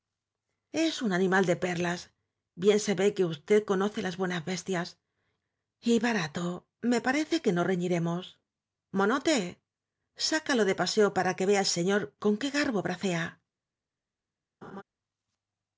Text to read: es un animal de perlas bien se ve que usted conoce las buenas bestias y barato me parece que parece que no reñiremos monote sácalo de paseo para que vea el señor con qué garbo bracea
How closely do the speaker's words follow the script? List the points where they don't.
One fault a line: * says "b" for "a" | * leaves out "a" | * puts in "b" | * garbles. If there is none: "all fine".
* leaves out "parece que"